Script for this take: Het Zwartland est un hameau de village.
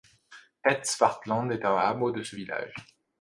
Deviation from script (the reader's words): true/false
true